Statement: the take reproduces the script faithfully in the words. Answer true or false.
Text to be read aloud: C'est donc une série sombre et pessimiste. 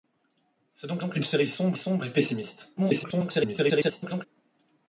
false